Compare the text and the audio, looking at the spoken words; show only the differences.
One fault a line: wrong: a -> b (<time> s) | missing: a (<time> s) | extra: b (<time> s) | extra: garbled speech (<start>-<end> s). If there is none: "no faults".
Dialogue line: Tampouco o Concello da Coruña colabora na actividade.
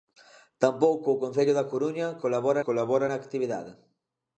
extra: colabora (2.6 s)